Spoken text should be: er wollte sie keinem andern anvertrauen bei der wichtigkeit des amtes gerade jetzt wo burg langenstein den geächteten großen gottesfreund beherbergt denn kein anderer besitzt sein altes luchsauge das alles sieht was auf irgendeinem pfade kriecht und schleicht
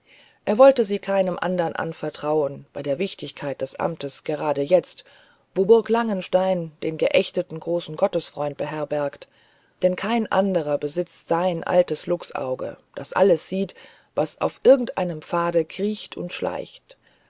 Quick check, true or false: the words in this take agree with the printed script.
true